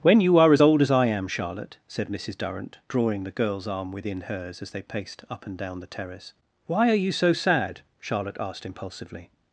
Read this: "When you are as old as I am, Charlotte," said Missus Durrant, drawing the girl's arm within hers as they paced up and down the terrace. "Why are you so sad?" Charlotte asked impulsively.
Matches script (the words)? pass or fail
pass